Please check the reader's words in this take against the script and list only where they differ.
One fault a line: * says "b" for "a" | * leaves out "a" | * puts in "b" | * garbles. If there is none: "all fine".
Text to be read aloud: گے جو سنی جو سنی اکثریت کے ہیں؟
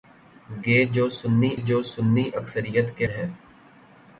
all fine